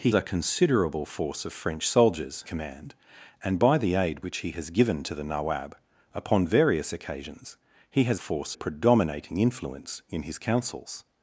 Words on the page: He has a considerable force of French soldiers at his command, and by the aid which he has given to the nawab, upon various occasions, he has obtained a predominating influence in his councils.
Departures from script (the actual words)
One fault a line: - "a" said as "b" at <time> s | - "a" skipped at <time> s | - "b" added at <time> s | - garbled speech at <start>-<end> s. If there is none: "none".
- "has" skipped at 0.1 s
- "at his" skipped at 2.4 s
- "obtained" said as "force" at 8.2 s